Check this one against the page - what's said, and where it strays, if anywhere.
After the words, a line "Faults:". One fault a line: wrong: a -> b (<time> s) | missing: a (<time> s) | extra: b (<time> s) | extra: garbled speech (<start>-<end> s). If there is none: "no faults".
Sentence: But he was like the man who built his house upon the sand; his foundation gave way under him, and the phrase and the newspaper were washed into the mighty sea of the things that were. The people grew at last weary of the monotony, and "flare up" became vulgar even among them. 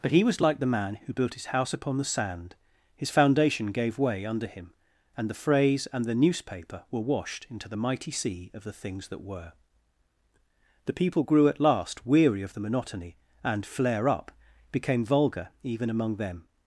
But he was like the man who built his house upon the sand; his foundation gave way under him, and the phrase and the newspaper were washed into the mighty sea of the things that were. The people grew at last weary of the monotony, and "flare up" became vulgar even among them.
Faults:
no faults